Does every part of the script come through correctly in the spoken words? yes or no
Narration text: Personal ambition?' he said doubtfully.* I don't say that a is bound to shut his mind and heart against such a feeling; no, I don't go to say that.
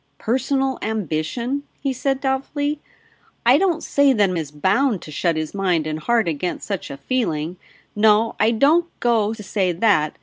yes